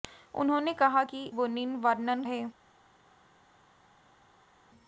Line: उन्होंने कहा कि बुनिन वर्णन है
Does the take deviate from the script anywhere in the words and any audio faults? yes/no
no